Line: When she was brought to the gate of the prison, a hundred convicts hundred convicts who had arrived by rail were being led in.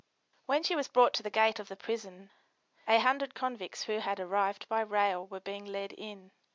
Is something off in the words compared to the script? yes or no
yes